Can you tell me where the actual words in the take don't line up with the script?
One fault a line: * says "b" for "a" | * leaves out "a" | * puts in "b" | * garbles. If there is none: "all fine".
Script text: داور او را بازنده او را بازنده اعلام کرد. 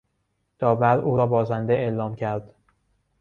* leaves out "او را بازنده"